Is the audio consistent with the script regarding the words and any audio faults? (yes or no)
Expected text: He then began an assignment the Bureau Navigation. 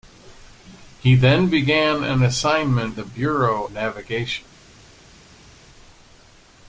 yes